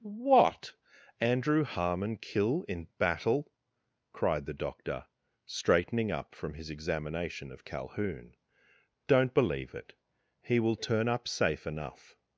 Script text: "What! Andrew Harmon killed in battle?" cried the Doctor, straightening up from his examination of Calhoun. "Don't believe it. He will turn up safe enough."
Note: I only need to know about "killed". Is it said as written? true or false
false